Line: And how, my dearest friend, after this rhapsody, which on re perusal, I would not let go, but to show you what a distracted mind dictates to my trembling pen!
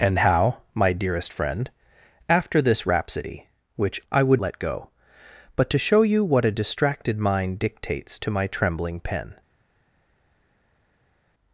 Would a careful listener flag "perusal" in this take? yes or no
yes